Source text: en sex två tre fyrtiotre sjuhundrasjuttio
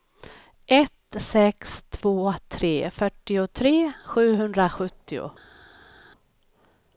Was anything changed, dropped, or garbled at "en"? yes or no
yes